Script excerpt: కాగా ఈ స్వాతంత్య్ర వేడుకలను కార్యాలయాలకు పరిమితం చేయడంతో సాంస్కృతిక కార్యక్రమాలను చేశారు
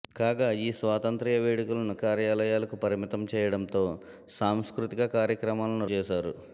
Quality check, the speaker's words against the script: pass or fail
pass